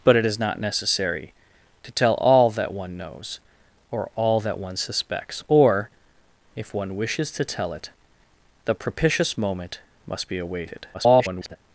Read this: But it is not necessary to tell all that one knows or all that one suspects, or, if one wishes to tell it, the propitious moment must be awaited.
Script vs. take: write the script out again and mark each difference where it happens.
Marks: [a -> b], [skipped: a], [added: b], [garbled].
But it is not necessary to tell all that one knows or all that one suspects, or, if one wishes to tell it, the propitious moment must be awaited. [garbled]